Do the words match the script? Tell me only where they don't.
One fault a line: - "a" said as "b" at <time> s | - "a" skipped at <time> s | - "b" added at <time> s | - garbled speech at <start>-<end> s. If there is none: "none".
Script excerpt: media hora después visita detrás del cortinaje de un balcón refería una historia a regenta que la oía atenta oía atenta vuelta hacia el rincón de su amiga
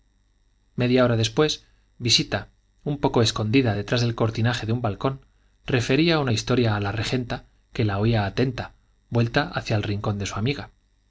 - "un poco escondida" added at 2.8 s
- "la" added at 6.8 s
- "oía atenta" skipped at 8.7 s